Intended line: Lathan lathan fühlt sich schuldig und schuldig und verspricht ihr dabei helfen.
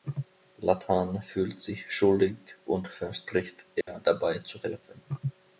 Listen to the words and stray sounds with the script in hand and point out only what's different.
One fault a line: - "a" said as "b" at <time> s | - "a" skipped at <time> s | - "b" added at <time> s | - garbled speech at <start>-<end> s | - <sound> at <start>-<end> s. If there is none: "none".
- "lathan" skipped at 1.2 s
- "schuldig und" skipped at 2.9 s
- dropout at 3.8-3.9 s
- "zu" added at 4.4 s